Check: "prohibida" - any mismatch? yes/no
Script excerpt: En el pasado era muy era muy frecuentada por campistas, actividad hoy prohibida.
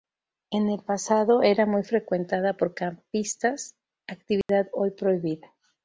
no